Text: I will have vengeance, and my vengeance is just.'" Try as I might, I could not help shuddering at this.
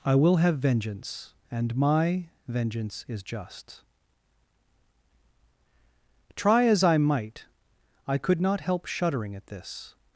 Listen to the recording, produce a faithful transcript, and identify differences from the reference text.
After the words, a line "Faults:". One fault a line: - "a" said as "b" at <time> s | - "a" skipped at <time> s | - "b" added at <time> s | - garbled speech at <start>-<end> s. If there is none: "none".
I will have vengeance, and my vengeance is just.'" Try as I might, I could not help shuddering at this.
Faults:
none